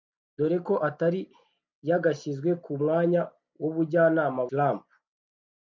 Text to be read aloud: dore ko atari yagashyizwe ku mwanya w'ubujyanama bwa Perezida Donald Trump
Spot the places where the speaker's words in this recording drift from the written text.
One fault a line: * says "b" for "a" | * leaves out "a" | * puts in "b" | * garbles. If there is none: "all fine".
* leaves out "bwa Perezida Donald"